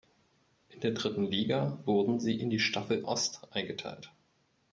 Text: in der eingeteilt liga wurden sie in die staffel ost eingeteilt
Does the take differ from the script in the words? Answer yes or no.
yes